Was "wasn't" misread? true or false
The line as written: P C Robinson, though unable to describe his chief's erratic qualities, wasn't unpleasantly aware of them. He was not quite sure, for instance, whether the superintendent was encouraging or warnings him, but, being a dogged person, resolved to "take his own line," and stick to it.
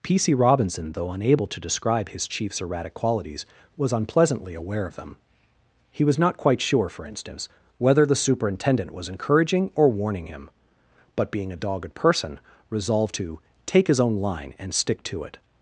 true